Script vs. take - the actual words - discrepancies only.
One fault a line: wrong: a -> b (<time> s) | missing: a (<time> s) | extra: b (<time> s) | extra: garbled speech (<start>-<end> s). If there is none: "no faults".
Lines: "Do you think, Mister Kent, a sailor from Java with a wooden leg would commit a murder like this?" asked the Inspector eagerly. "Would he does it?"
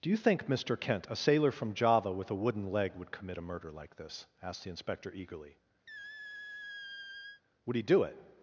wrong: does -> do (7.8 s)